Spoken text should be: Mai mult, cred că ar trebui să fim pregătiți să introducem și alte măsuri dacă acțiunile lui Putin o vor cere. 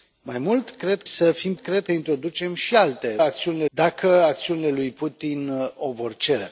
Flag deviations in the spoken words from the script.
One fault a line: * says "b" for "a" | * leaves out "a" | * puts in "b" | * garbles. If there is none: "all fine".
* leaves out "că ar trebui"
* says "cred" for "pregătiți"
* says "acțiunile" for "măsuri"